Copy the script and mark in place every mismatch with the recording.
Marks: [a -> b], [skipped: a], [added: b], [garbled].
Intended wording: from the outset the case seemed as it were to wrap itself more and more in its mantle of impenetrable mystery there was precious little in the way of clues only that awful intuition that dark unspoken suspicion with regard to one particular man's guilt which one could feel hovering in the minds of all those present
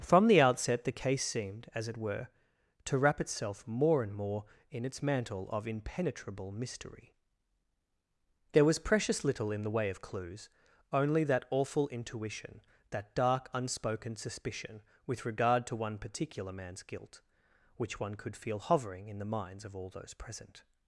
from the outset the case seemed as it were to wrap itself more and more in its mantle of impenetrable mystery there was precious little in the way of clues only that awful intuition that dark unspoken suspicion with regard to one particular man's guilt which one could feel hovering in the minds of all those present